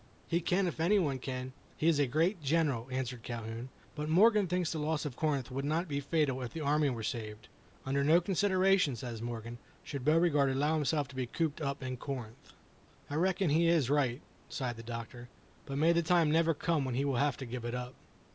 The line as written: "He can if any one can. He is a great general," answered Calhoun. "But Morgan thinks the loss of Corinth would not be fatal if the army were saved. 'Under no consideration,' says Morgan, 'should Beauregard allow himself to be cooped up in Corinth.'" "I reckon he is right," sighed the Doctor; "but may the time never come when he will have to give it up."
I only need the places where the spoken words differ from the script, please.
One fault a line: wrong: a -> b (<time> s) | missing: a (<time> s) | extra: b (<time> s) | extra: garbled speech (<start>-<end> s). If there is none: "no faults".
no faults